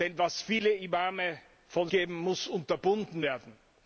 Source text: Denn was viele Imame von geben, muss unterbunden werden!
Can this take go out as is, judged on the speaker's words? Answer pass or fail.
pass